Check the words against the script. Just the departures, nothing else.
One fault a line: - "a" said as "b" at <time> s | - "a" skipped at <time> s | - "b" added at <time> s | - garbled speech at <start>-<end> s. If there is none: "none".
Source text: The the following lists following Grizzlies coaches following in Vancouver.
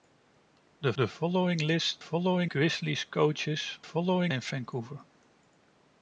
none